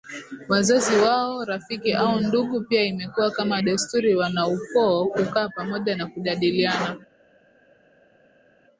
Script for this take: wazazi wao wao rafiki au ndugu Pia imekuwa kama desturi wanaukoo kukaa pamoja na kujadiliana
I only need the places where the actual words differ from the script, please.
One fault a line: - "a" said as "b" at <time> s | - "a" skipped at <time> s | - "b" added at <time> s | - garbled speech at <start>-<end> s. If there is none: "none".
- "wao" skipped at 1.4 s